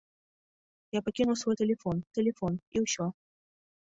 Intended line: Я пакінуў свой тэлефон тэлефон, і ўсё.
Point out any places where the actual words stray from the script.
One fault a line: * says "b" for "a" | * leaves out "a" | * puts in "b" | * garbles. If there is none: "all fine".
all fine